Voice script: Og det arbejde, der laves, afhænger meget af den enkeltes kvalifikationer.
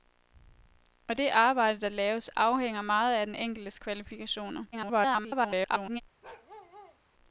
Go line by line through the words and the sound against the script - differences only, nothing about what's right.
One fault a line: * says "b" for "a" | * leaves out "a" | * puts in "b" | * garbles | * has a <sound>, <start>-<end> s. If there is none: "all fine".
* garbles
* has a bark, 6.2-7.0 s